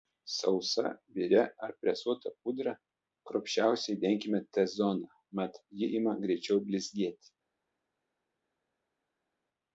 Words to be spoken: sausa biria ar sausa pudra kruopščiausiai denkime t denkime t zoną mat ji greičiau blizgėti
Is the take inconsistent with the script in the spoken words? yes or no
yes